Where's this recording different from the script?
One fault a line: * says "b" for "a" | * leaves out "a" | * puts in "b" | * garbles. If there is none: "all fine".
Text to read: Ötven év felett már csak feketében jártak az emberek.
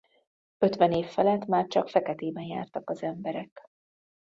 all fine